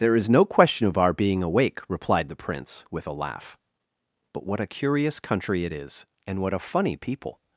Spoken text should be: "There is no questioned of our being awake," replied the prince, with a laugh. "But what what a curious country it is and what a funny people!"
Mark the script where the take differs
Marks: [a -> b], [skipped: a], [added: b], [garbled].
"There is no [questioned -> question] of our being awake," replied the prince, with a laugh. "But what [skipped: what] a curious country it is and what a funny people!"